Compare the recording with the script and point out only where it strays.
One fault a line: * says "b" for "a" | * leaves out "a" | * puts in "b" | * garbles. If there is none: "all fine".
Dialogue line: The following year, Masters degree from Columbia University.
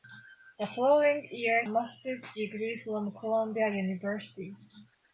all fine